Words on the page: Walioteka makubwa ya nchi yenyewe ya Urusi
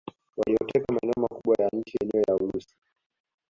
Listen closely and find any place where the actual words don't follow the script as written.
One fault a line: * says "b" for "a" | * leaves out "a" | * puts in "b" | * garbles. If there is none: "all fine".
* puts in "maeneo"